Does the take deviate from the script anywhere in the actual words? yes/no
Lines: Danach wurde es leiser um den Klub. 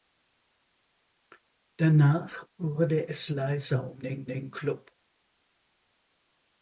yes